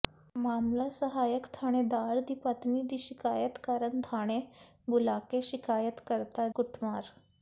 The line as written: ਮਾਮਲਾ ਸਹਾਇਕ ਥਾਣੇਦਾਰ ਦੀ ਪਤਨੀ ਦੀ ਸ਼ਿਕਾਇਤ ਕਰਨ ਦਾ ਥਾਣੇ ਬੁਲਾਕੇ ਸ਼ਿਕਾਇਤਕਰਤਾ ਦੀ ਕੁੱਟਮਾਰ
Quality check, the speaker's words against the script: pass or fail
fail